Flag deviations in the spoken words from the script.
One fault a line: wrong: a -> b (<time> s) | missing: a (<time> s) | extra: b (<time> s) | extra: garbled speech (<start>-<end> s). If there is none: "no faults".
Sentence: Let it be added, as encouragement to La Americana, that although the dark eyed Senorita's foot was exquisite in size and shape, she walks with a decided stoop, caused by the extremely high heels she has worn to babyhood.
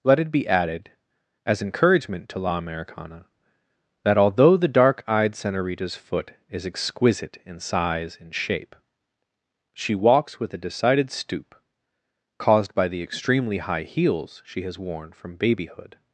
wrong: was -> is (6.5 s)
wrong: to -> from (15.1 s)